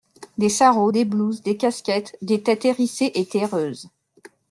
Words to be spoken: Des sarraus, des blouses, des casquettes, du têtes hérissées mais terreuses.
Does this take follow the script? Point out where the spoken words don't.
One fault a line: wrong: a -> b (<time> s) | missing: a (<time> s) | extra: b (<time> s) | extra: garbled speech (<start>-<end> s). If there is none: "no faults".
wrong: du -> des (2.2 s)
wrong: mais -> et (3.2 s)